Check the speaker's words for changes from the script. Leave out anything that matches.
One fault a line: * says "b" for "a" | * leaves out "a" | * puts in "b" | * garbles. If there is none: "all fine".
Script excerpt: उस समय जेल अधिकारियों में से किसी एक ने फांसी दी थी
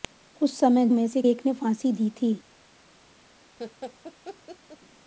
* leaves out "जेल अधिकारियों"
* leaves out "किसी"